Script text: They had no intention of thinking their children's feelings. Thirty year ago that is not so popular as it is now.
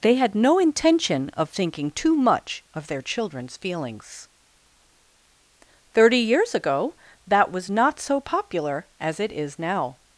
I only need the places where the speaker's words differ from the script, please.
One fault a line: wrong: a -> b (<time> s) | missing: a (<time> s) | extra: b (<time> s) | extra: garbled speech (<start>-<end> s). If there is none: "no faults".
extra: too much of (1.9 s)
wrong: year -> years (6.2 s)
wrong: is -> was (7.5 s)